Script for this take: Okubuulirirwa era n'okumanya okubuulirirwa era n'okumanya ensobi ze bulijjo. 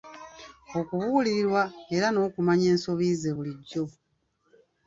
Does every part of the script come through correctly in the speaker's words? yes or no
no